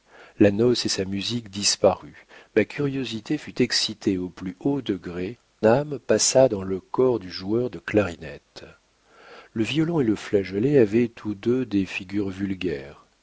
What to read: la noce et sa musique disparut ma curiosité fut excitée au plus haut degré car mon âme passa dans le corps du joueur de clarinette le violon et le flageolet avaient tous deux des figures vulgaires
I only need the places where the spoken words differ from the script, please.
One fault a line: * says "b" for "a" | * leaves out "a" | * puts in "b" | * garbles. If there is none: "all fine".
* leaves out "car mon"